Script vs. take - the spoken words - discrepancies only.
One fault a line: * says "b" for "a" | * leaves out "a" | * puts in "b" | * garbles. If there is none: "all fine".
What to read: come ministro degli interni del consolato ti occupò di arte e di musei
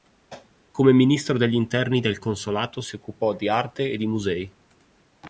* says "si" for "ti"